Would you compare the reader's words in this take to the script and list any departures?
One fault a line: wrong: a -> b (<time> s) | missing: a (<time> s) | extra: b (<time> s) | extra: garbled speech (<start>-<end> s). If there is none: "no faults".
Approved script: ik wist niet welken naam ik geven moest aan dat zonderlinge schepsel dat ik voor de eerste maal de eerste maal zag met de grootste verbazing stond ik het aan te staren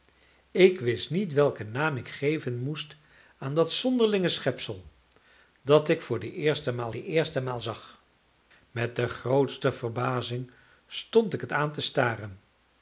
no faults